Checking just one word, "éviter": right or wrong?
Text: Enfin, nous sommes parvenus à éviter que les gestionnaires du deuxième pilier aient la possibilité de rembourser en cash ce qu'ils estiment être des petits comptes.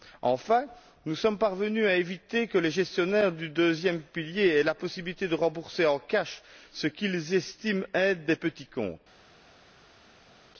right